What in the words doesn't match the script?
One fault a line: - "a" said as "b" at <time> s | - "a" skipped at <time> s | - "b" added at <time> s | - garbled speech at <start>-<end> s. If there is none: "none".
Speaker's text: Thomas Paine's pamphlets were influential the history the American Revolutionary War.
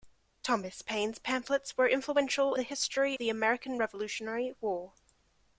none